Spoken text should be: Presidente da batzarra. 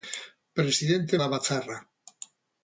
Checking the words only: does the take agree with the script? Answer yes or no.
yes